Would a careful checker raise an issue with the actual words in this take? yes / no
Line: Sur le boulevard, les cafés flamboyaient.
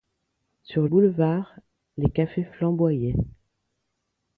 yes